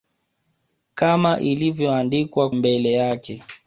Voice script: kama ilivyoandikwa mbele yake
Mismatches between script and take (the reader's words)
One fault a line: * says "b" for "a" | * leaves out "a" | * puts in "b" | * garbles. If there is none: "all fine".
all fine